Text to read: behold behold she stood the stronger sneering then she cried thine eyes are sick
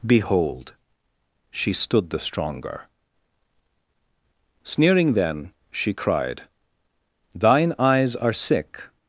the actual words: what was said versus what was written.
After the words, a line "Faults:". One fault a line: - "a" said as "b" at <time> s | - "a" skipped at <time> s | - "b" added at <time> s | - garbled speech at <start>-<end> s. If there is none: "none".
behold she stood the stronger sneering then she cried thine eyes are sick
Faults:
- "behold" skipped at 0.7 s